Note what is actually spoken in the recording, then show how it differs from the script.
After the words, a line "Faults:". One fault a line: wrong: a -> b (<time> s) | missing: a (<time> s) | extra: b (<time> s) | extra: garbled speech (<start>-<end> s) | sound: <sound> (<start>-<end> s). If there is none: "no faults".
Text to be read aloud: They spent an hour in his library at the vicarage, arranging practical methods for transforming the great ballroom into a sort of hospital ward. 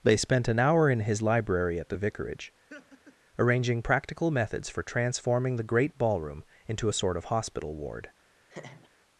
They spent an hour in his library at the vicarage, arranging practical methods for transforming the great ballroom into a sort of hospital ward.
Faults:
sound: laugh (2.7-3.2 s)
sound: laugh (8.5-8.9 s)